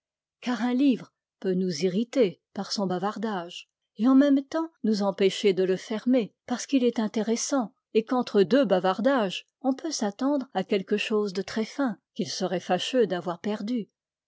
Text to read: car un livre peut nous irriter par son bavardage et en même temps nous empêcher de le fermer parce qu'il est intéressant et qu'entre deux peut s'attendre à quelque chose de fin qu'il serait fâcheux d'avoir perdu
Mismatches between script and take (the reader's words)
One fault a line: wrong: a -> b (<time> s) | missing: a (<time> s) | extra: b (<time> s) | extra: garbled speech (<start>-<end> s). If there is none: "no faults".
extra: bavardages on (8.6 s)
extra: très (11.4 s)